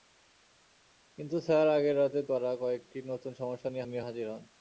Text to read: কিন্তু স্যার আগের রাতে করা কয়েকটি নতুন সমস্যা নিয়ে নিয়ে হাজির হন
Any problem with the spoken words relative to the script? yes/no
no